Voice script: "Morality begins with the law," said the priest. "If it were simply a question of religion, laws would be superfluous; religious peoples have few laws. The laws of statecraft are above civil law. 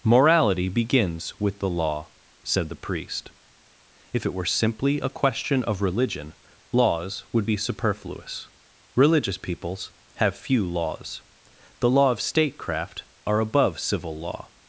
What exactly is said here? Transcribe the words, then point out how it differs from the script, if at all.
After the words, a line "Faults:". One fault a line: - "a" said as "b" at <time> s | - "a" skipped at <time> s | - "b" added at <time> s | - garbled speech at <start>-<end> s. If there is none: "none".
"Morality begins with the law," said the priest. "If it were simply a question of religion, laws would be superfluous; religious peoples have few laws. The law of statecraft are above civil law.
Faults:
- "laws" said as "law" at 11.9 s